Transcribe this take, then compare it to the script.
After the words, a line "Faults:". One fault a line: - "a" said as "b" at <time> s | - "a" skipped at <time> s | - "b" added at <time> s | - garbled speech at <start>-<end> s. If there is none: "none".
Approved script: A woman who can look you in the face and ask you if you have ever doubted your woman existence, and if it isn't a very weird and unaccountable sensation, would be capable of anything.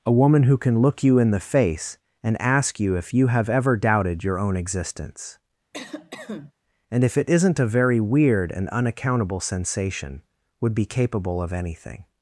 A woman who can look you in the face and ask you if you have ever doubted your own existence, and if it isn't a very weird and unaccountable sensation, would be capable of anything.
Faults:
- "woman" said as "own" at 4.4 s